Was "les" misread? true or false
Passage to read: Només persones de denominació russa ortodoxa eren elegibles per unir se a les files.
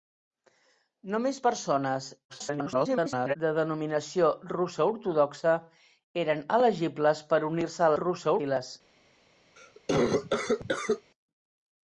true